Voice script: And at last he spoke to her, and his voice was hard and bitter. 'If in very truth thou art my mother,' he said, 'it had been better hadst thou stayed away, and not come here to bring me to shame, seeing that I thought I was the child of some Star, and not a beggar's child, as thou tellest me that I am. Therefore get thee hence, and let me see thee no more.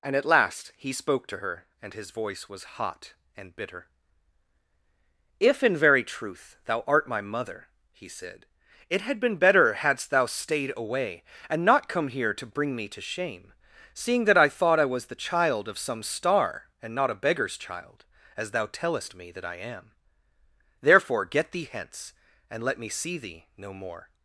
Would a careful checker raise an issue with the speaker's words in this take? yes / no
yes